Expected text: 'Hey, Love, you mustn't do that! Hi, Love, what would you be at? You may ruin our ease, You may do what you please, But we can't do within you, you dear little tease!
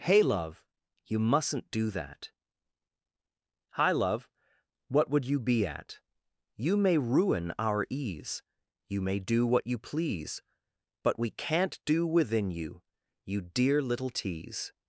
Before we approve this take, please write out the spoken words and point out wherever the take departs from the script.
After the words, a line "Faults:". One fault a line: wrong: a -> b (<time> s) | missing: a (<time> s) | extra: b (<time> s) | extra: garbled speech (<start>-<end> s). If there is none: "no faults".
'Hey, Love, you mustn't do that! Hi, Love, what would you be at? You may ruin our ease, You may do what you please, But we can't do within you, you dear little tease!
Faults:
no faults